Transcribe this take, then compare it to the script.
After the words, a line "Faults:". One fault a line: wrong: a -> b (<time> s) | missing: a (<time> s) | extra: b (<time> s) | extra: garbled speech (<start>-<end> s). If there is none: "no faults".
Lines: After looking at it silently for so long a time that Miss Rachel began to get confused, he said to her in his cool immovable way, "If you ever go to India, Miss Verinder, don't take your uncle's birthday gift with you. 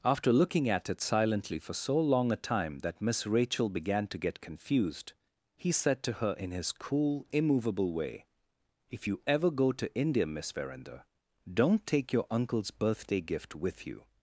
After looking at it silently for so long a time that Miss Rachel began to get confused, he said to her in his cool immovable way, "If you ever go to India, Miss Verinder, don't take your uncle's birthday gift with you.
Faults:
no faults